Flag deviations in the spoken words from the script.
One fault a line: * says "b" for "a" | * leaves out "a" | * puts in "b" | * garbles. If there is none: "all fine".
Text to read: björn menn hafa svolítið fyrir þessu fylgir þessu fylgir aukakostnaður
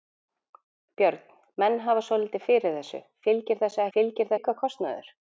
all fine